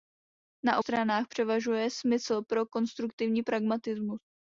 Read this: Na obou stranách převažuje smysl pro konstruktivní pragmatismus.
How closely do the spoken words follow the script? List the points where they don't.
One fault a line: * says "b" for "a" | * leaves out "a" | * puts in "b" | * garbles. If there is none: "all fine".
* leaves out "obou"